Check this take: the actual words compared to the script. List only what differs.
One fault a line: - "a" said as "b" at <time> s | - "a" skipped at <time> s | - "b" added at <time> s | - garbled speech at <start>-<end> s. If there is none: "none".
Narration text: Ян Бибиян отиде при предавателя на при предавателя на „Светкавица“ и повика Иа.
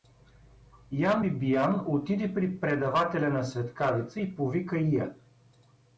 - "при предавателя на" skipped at 3.4 s